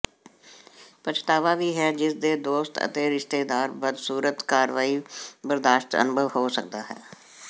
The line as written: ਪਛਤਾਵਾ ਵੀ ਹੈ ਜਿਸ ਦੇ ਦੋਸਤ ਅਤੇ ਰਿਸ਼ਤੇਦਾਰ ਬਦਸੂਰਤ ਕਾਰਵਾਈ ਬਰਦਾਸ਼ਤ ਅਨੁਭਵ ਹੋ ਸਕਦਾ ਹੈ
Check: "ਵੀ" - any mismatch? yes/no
no